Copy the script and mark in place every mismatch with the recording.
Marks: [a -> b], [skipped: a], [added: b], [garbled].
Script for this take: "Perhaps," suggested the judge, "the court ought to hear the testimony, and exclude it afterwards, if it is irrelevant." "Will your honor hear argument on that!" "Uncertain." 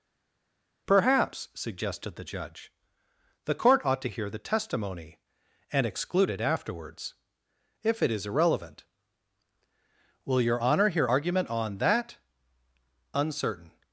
"Perhaps," suggested the judge, "the court ought to hear the testimony, and exclude it afterwards, if it is irrelevant." "Will your honor hear argument on that!" "Uncertain."